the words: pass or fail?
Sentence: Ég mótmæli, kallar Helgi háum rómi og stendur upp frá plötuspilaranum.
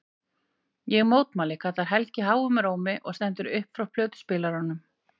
pass